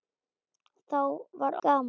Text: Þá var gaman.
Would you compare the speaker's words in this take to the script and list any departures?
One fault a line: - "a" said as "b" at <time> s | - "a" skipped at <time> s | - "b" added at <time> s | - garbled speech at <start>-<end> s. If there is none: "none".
none